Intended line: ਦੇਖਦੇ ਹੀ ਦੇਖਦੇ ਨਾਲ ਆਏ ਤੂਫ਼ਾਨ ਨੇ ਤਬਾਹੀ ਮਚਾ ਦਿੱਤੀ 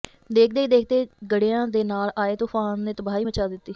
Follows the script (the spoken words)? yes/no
no